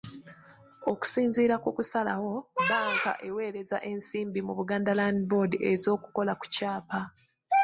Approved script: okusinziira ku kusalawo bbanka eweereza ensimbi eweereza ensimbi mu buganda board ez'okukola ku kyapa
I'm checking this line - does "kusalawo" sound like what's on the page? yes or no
yes